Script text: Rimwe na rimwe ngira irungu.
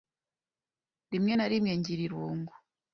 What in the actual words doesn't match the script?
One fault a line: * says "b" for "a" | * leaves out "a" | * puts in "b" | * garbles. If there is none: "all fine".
all fine